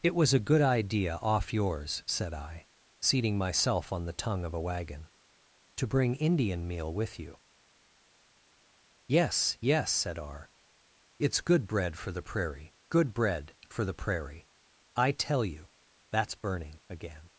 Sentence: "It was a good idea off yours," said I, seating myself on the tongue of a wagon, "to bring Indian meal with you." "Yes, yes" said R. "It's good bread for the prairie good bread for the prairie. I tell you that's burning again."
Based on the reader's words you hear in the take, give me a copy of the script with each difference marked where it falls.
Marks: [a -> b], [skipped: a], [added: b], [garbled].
"It was a good idea off yours," said I, seating myself on the tongue of a wagon, "to bring Indian meal with you." "Yes, yes" said R. "It's good bread for the prairie good bread for the prairie. I tell you that's burning again."